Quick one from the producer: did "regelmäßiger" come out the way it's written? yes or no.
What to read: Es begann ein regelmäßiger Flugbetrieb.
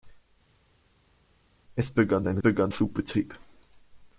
no